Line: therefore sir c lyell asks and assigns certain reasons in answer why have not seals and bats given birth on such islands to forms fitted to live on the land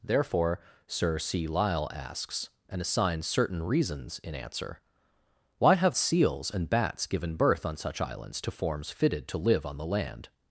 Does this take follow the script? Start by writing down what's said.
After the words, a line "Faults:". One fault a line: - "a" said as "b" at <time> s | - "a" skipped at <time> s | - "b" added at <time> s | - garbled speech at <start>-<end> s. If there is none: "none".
therefore sir c lyell asks and assigns certain reasons in answer why have seals and bats given birth on such islands to forms fitted to live on the land
Faults:
- "not" skipped at 6.0 s